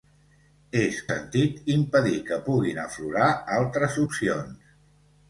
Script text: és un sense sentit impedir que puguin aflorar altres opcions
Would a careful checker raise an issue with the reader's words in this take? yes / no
yes